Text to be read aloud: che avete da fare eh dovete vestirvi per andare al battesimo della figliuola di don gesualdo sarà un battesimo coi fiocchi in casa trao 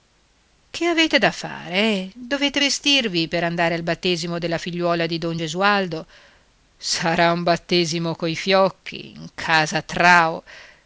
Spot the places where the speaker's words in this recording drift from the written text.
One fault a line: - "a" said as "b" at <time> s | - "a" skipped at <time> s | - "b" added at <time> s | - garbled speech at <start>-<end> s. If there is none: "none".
none